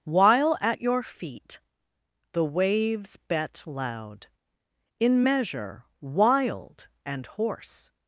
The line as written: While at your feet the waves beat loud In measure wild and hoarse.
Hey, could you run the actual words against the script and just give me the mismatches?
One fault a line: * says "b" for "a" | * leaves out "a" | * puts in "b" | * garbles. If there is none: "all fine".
* says "bet" for "beat"